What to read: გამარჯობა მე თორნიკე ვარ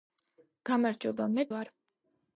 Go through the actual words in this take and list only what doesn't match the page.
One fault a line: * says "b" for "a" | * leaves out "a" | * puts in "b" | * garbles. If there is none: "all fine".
* leaves out "თორნიკე"